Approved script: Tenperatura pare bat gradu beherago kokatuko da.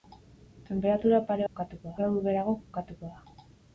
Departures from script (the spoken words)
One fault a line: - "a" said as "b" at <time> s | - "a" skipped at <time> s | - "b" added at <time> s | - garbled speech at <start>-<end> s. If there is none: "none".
- "bat" said as "kokatuko" at 1.5 s